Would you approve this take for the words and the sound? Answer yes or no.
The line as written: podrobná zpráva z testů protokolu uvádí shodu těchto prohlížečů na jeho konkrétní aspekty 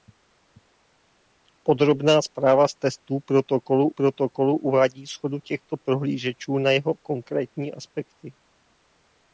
no